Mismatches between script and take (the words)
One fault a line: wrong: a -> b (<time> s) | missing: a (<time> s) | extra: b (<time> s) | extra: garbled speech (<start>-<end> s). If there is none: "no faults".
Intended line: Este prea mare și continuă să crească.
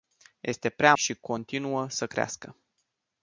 missing: mare (0.9 s)